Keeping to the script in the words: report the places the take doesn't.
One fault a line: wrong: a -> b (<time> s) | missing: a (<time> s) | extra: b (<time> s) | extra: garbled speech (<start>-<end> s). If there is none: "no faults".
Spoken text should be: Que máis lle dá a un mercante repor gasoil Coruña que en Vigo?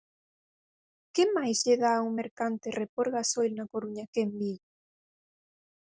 extra: na (3.5 s)